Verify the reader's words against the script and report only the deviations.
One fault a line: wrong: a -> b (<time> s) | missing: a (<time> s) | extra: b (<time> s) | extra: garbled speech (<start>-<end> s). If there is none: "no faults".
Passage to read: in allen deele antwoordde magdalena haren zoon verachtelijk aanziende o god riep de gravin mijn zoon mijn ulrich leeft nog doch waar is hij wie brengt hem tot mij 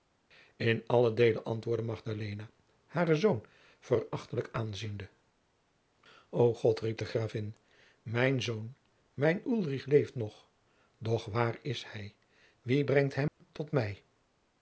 no faults